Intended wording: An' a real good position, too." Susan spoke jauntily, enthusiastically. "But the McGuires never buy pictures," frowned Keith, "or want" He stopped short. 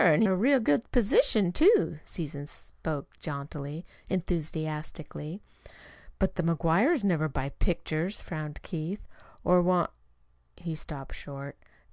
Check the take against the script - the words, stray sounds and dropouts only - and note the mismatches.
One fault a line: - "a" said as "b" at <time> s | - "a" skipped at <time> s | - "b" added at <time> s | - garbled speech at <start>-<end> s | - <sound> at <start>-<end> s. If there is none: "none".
none